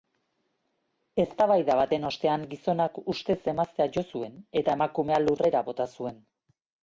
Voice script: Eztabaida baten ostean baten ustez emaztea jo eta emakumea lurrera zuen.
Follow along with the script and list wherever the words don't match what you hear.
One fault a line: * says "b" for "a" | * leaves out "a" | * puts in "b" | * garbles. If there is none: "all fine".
* says "gizonak" for "baten"
* puts in "zuen"
* puts in "bota"